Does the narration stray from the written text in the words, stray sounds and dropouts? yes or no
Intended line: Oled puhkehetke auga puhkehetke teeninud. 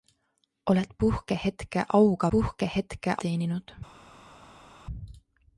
no